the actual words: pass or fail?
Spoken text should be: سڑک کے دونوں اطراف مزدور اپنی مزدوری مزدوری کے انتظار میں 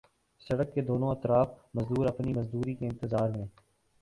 fail